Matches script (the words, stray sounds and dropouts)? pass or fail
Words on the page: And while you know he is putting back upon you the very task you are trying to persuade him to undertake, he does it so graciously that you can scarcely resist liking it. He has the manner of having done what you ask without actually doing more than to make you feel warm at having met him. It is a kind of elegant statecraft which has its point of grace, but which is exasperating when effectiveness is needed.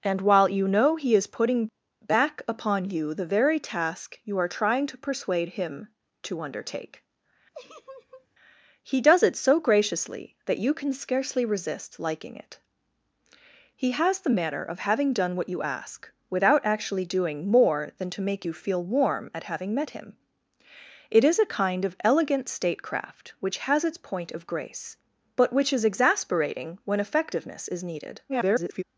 fail